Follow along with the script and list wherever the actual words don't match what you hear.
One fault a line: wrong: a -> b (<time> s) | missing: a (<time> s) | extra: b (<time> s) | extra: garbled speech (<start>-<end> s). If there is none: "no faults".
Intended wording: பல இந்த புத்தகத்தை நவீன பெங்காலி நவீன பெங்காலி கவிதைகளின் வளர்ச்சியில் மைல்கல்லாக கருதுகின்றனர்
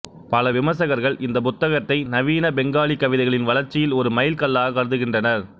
extra: விமர்சகர்கள் (0.5 s)
missing: நவீன பெங்காலி (3.0 s)
extra: ஒரு (4.0 s)